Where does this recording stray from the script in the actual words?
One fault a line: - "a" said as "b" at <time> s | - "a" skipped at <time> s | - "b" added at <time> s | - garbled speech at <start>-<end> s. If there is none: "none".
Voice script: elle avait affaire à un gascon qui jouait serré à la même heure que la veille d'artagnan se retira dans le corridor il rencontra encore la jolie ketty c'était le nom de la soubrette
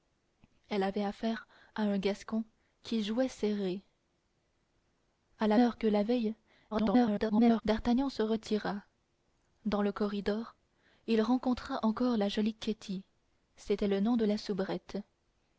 - "même" skipped at 5.6 s
- garbled speech at 6.7-7.6 s